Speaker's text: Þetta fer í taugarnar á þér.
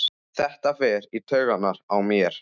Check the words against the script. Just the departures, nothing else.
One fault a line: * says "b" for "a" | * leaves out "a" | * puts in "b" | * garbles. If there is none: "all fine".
* says "mér" for "þér"